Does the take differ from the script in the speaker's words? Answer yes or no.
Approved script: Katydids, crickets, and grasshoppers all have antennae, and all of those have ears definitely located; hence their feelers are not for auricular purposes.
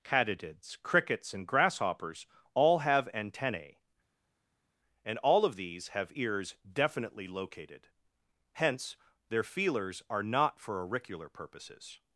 yes